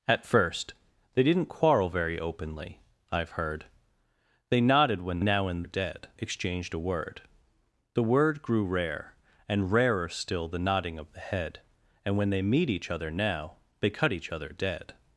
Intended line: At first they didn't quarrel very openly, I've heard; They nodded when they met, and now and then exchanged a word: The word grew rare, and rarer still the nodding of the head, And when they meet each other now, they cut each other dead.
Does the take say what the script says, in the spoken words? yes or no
no